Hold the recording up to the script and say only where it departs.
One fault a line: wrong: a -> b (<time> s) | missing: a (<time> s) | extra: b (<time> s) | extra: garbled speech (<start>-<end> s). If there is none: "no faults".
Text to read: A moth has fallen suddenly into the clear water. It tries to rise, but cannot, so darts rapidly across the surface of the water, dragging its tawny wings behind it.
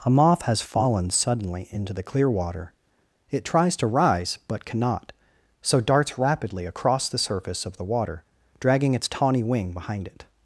wrong: wings -> wing (9.4 s)